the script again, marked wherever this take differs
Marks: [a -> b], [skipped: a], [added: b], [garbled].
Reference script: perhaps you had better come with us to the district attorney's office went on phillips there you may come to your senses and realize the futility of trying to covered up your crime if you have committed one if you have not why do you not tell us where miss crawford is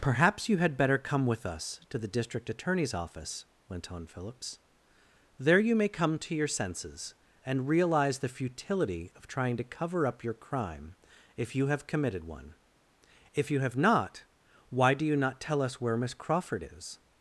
perhaps you had better come with us to the district attorney's office went on phillips there you may come to your senses and realize the futility of trying to [covered -> cover] up your crime if you have committed one if you have not why do you not tell us where miss crawford is